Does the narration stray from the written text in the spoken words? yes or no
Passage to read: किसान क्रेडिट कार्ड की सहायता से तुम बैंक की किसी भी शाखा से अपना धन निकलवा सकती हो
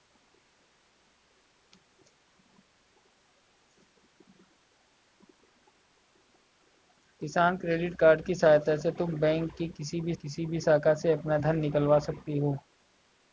yes